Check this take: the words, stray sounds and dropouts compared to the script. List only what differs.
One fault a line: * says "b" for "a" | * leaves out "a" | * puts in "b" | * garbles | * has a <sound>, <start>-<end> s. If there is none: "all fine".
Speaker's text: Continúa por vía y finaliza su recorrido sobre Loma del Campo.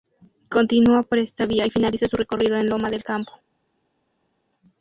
* puts in "esta"
* says "en" for "sobre"